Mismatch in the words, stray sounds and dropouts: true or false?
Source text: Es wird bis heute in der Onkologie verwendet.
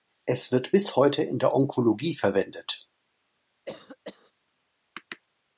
true